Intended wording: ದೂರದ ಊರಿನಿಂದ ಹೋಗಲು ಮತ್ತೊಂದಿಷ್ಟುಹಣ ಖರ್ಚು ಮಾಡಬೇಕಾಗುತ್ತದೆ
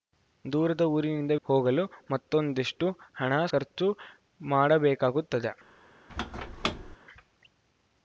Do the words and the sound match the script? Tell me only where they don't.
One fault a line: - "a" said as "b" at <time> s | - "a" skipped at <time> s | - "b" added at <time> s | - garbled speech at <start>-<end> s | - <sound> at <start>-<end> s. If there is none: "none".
- squeak at 6.1-7.0 s